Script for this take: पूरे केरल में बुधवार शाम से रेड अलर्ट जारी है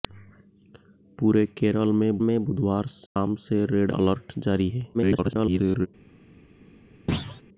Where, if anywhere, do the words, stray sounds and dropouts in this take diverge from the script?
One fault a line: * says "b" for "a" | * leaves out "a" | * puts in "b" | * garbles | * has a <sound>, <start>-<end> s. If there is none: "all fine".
* puts in "में"
* has a dropout, 3.1-3.2 s
* garbles
* has a thud, 7.1-7.4 s